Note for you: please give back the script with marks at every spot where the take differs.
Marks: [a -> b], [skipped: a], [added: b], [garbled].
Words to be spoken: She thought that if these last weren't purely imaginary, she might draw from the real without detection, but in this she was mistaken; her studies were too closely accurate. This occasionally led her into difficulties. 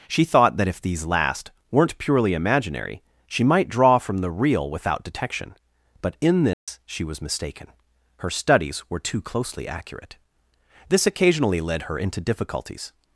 She thought that if these last weren't purely imaginary, she might draw from the real without detection, but in this she was mistaken; her studies were too closely accurate. This occasionally led her into difficulties.